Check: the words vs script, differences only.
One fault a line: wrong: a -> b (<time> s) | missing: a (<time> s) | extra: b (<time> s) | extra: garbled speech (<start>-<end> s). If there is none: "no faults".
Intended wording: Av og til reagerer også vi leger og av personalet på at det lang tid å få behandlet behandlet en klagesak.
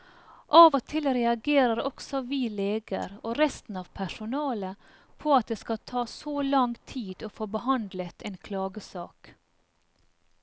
extra: resten (3.4 s)
extra: skal ta så (5.6 s)
missing: behandlet (8.2 s)